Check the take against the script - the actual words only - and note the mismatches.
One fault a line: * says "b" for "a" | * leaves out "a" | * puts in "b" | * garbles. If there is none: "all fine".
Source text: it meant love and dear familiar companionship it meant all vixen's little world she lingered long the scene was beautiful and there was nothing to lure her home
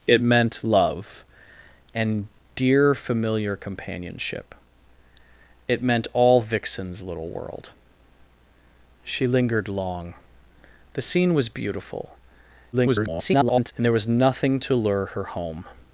* garbles